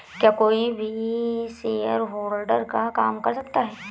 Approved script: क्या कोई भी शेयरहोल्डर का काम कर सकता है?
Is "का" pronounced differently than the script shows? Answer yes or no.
no